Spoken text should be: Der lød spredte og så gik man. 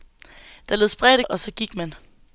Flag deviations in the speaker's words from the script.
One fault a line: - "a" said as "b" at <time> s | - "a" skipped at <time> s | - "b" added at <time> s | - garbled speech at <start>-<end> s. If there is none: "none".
none